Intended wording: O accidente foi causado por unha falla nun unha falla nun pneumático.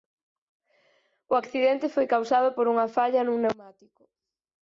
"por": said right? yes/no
yes